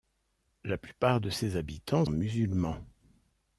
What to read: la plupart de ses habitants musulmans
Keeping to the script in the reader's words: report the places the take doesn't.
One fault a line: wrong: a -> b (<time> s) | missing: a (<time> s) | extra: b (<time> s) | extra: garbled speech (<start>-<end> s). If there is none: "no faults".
no faults